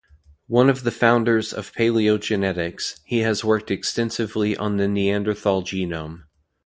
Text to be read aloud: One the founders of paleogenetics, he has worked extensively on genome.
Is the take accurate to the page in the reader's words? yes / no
no